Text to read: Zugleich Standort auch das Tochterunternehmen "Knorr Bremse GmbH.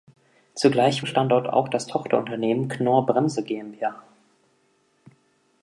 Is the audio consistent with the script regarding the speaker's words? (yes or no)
yes